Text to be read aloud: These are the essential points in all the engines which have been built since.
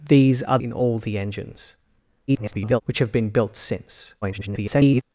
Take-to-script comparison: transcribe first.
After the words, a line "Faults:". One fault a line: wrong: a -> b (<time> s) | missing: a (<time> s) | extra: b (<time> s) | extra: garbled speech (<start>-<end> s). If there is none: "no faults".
These are in all the engines [garbled] which have been built since. [garbled]
Faults:
missing: the essential points (0.6 s)
extra: garbled speech (2.3-2.8 s)
extra: garbled speech (4.2-5.0 s)